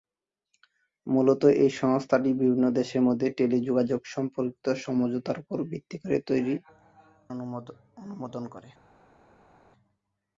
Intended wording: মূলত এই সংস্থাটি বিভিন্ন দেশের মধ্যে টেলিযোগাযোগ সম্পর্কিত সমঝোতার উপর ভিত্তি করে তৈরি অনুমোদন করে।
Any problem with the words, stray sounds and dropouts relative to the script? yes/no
no